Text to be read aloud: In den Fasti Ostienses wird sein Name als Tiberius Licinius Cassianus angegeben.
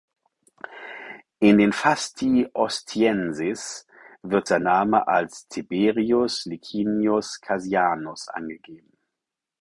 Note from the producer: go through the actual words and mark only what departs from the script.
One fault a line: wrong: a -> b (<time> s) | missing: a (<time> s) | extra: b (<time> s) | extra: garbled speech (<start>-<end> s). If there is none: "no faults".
no faults